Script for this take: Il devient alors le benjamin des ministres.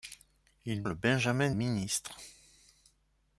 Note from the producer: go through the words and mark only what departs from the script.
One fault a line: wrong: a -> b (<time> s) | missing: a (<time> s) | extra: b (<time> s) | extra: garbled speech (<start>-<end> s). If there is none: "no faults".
missing: devient alors (0.8 s)
missing: des (1.5 s)